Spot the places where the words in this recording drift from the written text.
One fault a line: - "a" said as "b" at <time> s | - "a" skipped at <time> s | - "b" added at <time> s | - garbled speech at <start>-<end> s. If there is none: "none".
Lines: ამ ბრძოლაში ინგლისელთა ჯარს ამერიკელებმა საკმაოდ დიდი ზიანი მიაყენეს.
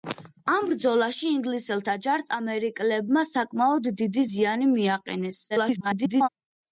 - garbled speech at 5.5-6.3 s